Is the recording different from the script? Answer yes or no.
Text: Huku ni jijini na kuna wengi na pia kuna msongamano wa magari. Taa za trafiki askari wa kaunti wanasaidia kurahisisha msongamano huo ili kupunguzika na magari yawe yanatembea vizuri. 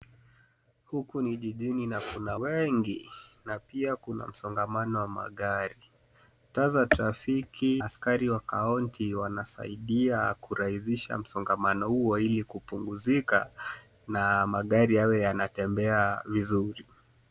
no